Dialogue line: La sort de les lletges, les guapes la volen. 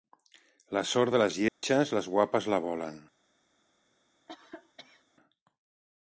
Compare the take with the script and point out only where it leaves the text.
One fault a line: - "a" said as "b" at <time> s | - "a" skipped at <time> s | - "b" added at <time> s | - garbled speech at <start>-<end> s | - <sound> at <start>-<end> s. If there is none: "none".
- dropout at 1.5-1.6 s
- cough at 4.3-5.0 s